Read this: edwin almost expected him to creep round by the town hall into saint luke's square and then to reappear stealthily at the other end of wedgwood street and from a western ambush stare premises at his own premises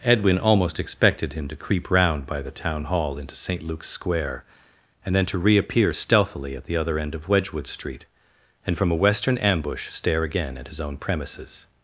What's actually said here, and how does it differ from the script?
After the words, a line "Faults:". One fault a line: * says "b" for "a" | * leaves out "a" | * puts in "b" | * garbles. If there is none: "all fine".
edwin almost expected him to creep round by the town hall into saint luke's square and then to reappear stealthily at the other end of wedgwood street and from a western ambush stare again at his own premises
Faults:
* says "again" for "premises"